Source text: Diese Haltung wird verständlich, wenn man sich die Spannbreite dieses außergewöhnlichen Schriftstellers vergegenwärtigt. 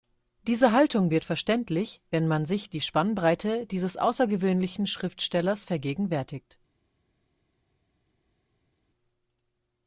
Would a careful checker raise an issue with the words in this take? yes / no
no